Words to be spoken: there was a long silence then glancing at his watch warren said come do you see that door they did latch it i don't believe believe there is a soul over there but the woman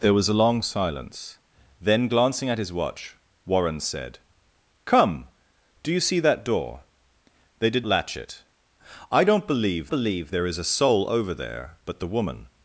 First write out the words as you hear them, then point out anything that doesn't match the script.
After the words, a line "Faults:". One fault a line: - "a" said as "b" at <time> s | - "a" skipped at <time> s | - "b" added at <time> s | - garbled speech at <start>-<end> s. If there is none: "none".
there was a long silence then glancing at his watch warren said come do you see that door they did latch it i don't believe believe there is a soul over there but the woman
Faults:
none